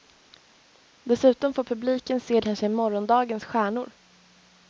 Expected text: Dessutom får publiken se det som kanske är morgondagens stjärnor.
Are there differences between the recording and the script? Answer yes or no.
yes